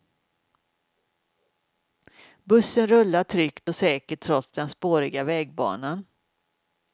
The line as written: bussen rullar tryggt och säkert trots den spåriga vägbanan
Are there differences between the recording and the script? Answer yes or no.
no